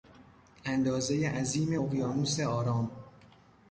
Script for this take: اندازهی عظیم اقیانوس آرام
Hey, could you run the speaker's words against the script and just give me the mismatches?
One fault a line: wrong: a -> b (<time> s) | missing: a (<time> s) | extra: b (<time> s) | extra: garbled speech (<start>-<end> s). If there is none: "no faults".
no faults